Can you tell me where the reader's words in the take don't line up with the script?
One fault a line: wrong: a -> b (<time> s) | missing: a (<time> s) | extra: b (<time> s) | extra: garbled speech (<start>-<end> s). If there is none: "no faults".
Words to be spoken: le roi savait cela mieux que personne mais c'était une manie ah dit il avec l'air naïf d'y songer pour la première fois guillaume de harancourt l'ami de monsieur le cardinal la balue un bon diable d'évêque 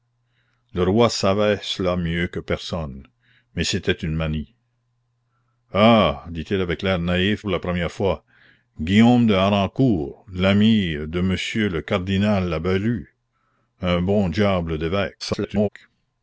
missing: d'y songer (7.4 s)
extra: garbled speech (15.2-15.7 s)